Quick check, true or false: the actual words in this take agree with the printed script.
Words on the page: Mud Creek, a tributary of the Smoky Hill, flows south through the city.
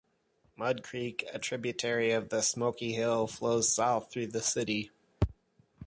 true